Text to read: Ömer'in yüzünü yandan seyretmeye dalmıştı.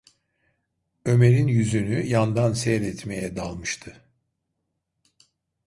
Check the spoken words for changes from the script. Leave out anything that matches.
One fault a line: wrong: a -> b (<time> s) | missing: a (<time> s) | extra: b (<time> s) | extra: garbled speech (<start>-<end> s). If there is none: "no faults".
no faults